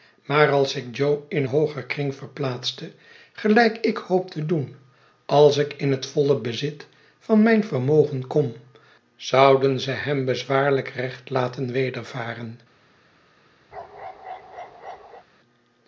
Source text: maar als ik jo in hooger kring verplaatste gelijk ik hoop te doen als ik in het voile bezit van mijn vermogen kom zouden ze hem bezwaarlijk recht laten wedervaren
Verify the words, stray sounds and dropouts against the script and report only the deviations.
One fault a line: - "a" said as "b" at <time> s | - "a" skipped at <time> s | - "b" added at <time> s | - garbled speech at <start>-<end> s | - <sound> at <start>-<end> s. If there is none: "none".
- bark at 13.7-15.2 s